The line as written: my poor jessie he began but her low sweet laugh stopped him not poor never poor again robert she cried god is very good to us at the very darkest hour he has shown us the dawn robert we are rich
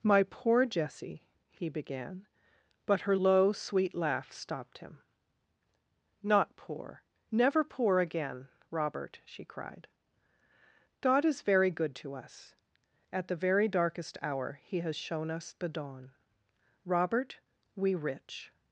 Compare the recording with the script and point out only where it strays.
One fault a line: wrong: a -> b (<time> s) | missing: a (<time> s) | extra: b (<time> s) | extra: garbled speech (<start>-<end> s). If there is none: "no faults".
missing: are (18.0 s)